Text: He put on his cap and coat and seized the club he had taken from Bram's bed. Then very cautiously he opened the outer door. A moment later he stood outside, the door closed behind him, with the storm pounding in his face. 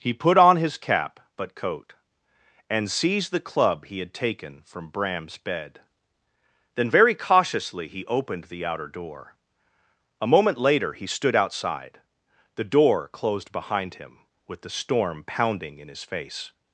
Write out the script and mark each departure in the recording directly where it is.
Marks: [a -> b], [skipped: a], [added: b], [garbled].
He put on his cap [and -> but] coat and seized the club he had taken from Bram's bed. Then very cautiously he opened the outer door. A moment later he stood outside, the door closed behind him, with the storm pounding in his face.